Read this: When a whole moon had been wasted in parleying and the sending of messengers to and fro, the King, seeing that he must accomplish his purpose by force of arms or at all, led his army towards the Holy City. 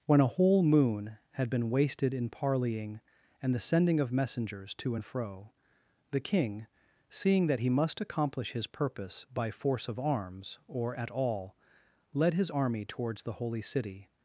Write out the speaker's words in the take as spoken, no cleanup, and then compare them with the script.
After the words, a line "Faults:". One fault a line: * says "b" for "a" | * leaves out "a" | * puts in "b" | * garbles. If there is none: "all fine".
When a whole moon had been wasted in parleying and the sending of messengers to and fro, the King, seeing that he must accomplish his purpose by force of arms or at all, led his army towards the Holy City.
Faults:
all fine